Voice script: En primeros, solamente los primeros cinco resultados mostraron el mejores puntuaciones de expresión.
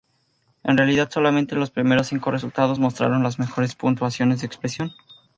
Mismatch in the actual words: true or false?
true